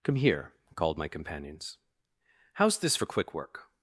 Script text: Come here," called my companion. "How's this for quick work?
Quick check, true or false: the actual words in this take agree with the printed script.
false